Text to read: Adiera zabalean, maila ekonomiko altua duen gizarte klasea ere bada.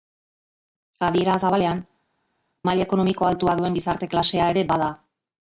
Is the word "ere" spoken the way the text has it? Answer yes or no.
yes